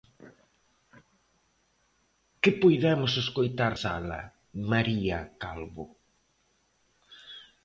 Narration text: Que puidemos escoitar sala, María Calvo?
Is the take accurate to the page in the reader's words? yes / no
yes